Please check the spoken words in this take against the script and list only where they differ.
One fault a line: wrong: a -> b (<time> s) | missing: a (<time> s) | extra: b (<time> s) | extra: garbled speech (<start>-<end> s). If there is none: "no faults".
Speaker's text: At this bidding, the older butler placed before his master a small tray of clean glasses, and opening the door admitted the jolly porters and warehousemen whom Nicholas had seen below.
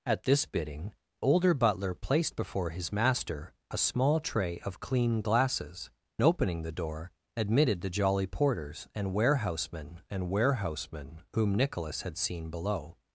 missing: the (0.9 s)
missing: and (5.9 s)
extra: and warehousemen (10.1 s)